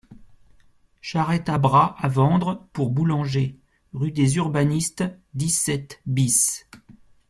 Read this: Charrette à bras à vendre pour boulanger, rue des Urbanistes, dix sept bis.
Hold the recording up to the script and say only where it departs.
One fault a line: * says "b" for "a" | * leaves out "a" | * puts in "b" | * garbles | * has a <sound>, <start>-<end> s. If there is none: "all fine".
all fine